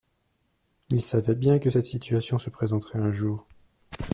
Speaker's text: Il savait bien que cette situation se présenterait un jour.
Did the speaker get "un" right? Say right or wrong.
right